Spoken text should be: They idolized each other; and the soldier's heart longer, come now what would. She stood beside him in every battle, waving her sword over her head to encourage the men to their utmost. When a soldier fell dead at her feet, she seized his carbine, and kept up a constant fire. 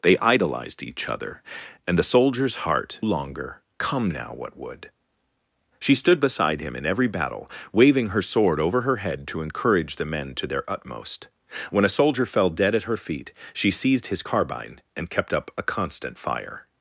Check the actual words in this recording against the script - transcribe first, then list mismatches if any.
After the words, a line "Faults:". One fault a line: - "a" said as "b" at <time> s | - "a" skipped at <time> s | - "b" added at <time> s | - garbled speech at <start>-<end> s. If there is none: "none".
They idolized each other; and the soldier's heart longer, come now what would. She stood beside him in every battle, waving her sword over her head to encourage the men to their utmost. When a soldier fell dead at her feet, she seized his carbine, and kept up a constant fire.
Faults:
none